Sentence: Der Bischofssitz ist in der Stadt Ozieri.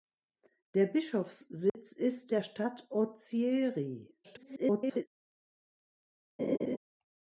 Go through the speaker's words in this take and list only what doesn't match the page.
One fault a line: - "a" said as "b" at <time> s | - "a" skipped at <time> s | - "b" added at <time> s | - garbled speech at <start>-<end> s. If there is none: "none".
- "in" skipped at 2.3 s
- garbled speech at 4.2-5.1 s